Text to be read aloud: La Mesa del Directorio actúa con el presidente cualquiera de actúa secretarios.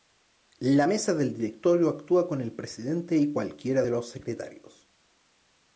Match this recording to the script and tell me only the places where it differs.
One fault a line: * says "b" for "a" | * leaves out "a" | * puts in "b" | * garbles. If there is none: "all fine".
* puts in "y"
* says "los" for "actúa"